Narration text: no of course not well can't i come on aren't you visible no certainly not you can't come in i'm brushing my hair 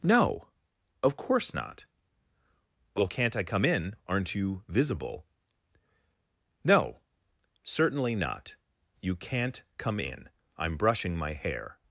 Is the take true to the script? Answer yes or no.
no